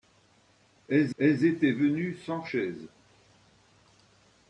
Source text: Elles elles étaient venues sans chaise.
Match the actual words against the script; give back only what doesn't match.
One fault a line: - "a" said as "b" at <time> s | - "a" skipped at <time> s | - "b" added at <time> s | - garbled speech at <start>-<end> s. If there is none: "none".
none